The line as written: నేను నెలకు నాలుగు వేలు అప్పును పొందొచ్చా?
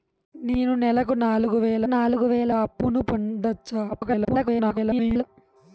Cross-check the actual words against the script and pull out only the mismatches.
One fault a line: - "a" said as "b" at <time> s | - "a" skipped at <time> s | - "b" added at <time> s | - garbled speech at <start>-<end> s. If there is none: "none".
- "నాలుగు వేలు" added at 1.8 s
- garbled speech at 3.9-5.2 s